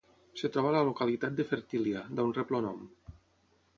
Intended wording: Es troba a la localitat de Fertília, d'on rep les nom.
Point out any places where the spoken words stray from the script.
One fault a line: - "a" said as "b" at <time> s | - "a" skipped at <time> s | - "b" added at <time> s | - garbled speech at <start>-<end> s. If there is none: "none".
- "les" said as "el" at 2.6 s